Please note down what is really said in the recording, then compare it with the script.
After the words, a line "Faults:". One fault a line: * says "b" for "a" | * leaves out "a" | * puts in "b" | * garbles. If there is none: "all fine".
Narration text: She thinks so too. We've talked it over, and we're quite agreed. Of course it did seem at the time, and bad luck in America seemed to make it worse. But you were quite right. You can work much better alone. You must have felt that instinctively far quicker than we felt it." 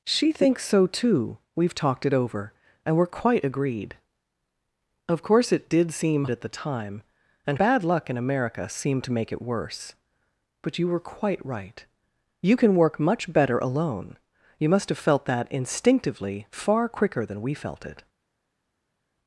She thinks so too. We've talked it over, and we're quite agreed. Of course it did seem at the time, and bad luck in America seemed to make it worse. But you were quite right. You can work much better alone. You must have felt that instinctively far quicker than we felt it."
Faults:
all fine